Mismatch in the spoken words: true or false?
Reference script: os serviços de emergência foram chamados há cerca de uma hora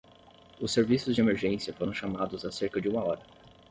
false